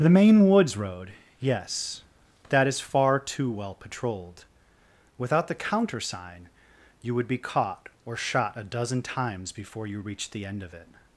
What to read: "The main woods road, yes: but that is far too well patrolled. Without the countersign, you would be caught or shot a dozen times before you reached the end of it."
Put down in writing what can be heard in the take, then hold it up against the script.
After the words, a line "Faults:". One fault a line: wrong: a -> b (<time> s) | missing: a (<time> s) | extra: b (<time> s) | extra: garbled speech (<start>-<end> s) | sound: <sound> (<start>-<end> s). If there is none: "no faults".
"The main woods road, yes: that is far too well patrolled. Without the countersign, you would be caught or shot a dozen times before you reached the end of it."
Faults:
missing: but (2.0 s)